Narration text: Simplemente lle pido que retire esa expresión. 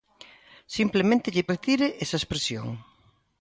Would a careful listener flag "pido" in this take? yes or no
yes